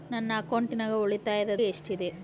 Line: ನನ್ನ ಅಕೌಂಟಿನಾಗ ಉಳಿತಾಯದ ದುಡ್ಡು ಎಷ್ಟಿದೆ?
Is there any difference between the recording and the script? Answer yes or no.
yes